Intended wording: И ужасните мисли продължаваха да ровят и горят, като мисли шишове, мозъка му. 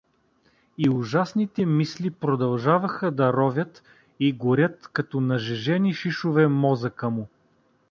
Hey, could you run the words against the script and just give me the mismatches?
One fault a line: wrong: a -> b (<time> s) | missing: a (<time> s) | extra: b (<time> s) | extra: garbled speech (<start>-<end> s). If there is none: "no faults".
wrong: мисли -> нажежени (5.2 s)